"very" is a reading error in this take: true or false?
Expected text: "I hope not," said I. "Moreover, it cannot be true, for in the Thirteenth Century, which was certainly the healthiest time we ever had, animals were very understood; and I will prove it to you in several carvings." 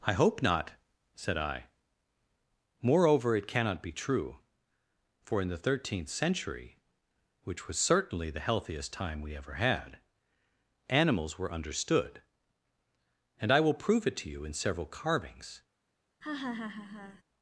true